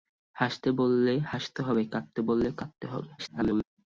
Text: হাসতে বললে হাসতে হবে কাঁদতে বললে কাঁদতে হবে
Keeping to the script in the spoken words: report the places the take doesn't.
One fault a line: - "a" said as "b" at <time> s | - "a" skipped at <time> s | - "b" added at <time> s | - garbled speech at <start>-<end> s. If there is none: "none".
- garbled speech at 3.2-3.6 s